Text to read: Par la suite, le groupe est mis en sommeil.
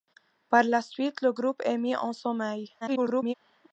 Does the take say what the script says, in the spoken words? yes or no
no